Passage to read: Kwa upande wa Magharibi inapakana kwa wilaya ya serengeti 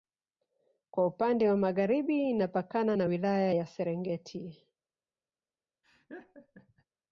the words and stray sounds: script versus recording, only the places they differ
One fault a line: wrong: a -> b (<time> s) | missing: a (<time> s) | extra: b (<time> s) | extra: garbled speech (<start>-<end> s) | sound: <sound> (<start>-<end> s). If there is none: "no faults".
wrong: kwa -> na (2.9 s)
sound: laugh (5.8-6.9 s)